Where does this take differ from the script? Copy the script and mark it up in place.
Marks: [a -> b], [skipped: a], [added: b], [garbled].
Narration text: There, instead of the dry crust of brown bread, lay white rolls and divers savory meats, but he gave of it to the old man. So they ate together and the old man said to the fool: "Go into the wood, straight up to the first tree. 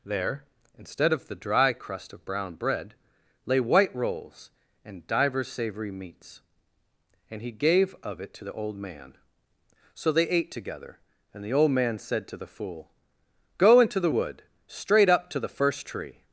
There, instead of the dry crust of brown bread, lay white rolls and divers savory meats, [but -> and] he gave of it to the old man. So they ate together and the old man said to the fool: "Go into the wood, straight up to the first tree.